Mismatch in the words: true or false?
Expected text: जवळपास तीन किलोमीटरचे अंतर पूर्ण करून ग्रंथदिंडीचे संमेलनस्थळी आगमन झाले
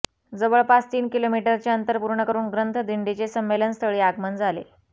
false